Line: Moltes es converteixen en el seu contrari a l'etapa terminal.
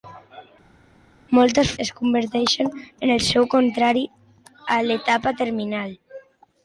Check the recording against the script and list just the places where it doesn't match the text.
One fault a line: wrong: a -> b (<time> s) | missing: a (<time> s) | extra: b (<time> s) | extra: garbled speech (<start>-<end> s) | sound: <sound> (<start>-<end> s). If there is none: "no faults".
no faults